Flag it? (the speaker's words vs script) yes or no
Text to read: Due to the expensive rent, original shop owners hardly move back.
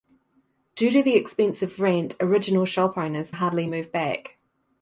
no